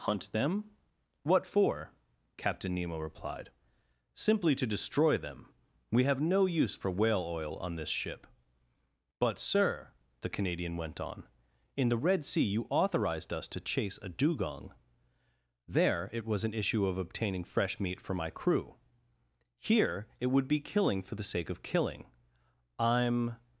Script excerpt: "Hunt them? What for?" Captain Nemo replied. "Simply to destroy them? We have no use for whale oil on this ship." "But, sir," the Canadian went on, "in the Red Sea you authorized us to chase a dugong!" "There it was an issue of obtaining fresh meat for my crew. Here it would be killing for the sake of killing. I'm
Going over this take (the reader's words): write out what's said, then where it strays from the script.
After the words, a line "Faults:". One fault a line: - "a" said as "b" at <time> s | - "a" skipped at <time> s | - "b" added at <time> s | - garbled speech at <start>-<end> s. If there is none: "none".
"Hunt them? What for?" Captain Nemo replied. "Simply to destroy them? We have no use for whale oil on this ship." "But, sir," the Canadian went on, "in the Red Sea you authorized us to chase a dugong!" "There it was an issue of obtaining fresh meat for my crew. Here it would be killing for the sake of killing. I'm
Faults:
none